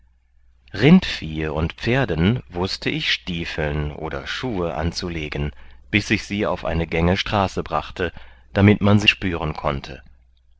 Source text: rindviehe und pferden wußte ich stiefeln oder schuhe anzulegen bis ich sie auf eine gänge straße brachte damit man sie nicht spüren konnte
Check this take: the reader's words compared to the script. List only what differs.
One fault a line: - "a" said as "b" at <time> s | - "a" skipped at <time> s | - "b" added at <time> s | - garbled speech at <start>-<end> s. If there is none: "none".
- "nicht" skipped at 9.1 s